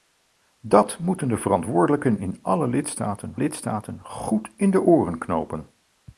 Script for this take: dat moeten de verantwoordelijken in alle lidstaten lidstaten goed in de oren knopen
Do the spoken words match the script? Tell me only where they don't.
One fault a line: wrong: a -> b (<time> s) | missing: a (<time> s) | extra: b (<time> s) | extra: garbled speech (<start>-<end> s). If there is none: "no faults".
no faults